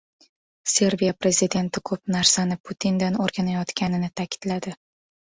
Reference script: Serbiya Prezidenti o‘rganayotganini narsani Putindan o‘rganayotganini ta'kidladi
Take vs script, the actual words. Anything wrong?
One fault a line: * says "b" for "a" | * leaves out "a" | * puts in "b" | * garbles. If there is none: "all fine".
* says "ko‘p" for "o‘rganayotganini"